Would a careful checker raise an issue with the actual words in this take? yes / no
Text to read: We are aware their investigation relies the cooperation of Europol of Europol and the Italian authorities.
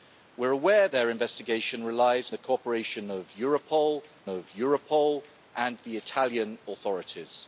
no